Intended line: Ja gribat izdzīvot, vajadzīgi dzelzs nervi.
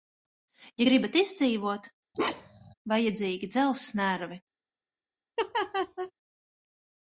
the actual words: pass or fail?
pass